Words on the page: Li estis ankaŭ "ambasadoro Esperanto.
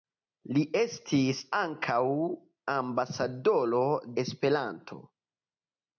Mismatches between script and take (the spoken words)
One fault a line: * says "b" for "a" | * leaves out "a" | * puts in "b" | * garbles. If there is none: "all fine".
all fine